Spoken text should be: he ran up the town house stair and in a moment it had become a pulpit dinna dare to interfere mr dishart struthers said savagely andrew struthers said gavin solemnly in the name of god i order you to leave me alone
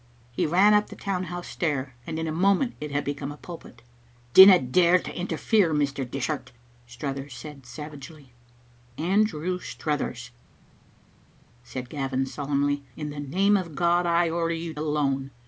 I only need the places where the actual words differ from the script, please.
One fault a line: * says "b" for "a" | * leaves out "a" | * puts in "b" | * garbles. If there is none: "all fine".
* leaves out "to leave me"